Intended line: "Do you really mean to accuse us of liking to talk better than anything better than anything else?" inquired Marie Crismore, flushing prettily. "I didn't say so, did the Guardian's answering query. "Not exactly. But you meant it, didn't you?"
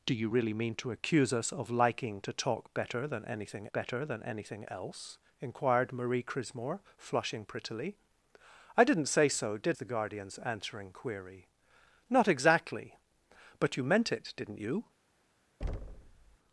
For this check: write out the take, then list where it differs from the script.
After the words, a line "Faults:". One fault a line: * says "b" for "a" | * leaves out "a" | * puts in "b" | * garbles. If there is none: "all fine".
"Do you really mean to accuse us of liking to talk better than anything better than anything else?" inquired Marie Crismore, flushing prettily. "I didn't say so, did the Guardian's answering query. "Not exactly. But you meant it, didn't you?"
Faults:
all fine